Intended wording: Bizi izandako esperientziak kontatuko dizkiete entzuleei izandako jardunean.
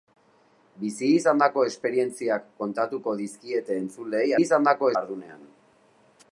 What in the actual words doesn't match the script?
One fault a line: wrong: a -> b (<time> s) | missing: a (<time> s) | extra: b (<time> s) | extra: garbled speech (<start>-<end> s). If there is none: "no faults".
no faults